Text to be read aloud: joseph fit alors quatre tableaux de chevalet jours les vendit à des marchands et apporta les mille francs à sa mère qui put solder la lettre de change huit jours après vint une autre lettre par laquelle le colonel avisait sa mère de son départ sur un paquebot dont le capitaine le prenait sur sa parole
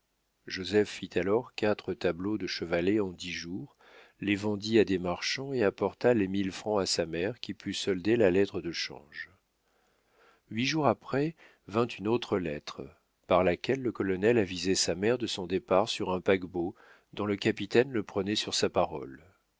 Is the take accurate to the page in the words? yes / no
no